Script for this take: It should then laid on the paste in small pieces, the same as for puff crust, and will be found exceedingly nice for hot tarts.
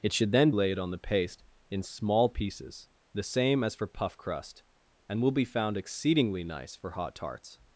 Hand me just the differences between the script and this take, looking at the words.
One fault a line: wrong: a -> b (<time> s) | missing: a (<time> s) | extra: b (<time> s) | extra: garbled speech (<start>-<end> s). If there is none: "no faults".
no faults